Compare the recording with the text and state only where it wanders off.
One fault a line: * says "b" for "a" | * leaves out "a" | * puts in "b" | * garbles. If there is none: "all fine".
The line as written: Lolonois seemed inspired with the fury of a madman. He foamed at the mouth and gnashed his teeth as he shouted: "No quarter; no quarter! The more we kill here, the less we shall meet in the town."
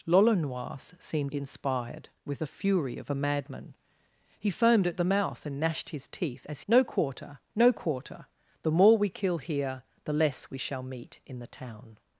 * leaves out "he shouted"